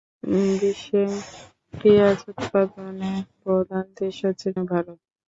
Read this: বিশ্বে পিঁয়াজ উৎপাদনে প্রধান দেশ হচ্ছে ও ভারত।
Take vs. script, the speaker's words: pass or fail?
pass